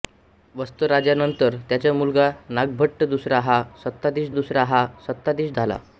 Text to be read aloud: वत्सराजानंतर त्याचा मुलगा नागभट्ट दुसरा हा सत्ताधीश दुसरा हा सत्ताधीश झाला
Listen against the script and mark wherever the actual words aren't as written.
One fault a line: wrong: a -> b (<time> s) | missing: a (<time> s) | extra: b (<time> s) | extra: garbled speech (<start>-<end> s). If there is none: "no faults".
no faults